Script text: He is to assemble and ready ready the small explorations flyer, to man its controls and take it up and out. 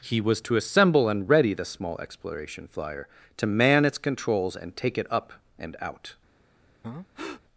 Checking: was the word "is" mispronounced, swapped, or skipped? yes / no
yes